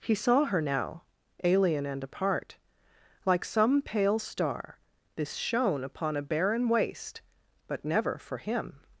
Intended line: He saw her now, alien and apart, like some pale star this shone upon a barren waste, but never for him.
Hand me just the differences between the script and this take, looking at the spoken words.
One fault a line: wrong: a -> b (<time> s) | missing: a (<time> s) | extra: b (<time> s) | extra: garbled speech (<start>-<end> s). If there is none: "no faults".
no faults